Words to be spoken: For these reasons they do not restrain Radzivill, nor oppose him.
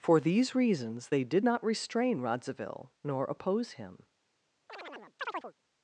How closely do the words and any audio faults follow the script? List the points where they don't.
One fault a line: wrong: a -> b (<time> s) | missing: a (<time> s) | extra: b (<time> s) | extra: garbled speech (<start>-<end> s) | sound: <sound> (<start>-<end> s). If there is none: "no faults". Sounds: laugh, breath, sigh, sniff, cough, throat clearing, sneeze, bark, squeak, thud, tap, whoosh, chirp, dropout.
wrong: do -> did (1.2 s)
sound: chirp (4.7-5.5 s)